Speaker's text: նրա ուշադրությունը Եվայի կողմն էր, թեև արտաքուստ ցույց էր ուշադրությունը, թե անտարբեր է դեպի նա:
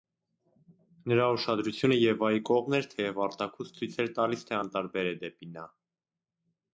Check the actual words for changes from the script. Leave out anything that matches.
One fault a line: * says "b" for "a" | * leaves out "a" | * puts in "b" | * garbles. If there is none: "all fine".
* says "տալիս" for "ուշադրությունը"